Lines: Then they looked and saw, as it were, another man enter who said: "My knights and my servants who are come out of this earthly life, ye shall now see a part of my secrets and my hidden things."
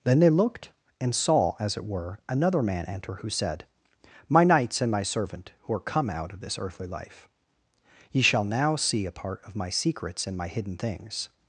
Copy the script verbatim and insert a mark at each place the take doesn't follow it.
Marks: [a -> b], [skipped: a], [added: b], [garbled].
Then they looked and saw, as it were, another man enter who said: "My knights and my [servants -> servant] who are come out of this earthly life, ye shall now see a part of my secrets and my hidden things."